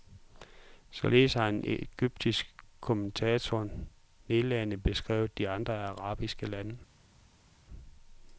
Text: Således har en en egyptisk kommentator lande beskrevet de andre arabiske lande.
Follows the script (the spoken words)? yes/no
no